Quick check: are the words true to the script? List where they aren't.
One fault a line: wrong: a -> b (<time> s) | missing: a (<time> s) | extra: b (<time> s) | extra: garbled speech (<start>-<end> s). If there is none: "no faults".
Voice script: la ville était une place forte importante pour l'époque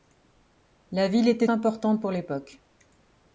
missing: une place forte (1.4 s)